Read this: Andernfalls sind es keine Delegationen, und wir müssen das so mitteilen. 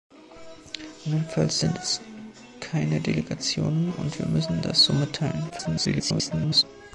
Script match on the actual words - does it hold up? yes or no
no